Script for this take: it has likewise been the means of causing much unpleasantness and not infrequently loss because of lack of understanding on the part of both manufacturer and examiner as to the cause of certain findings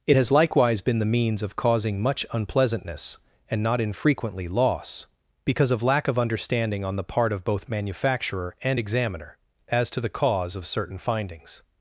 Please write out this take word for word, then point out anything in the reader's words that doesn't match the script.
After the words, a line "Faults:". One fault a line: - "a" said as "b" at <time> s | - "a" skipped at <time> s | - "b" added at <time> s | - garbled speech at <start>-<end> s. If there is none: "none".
it has likewise been the means of causing much unpleasantness and not infrequently loss because of lack of understanding on the part of both manufacturer and examiner as to the cause of certain findings
Faults:
none